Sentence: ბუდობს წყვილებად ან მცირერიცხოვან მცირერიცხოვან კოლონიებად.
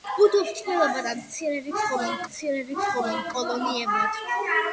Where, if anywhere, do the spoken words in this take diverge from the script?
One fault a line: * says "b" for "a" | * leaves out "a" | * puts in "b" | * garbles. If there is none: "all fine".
all fine